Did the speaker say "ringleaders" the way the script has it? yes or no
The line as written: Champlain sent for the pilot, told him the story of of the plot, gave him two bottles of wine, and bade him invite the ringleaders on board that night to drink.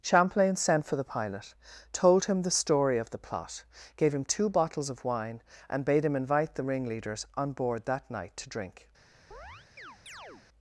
yes